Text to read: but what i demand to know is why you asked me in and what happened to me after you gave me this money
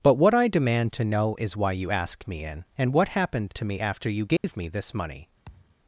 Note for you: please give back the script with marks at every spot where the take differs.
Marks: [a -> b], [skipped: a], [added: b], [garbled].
but what i demand to know is why you asked me in and what happened to me after you gave me this money